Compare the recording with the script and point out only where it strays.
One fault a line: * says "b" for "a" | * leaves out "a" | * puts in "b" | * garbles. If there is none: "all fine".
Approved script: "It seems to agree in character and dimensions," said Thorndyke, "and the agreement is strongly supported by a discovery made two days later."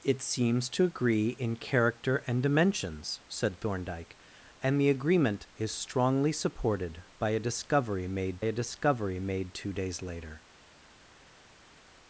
* puts in "a discovery made"